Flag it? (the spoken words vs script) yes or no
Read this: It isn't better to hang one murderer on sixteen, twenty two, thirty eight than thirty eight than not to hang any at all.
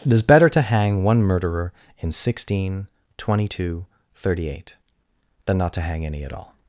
yes